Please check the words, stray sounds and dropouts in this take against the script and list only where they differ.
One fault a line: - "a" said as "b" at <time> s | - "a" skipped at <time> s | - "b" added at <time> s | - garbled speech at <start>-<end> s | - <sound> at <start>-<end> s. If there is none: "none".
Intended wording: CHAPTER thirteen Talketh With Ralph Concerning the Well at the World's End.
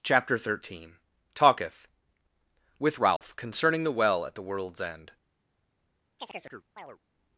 - dropout at 3.2-3.2 s
- chirp at 6.2-7.0 s